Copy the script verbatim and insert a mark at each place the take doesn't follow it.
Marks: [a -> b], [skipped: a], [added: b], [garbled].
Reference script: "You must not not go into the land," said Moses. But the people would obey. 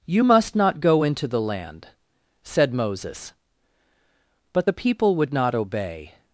"You must not [skipped: not] go into the land," said Moses. But the people would [added: not] obey.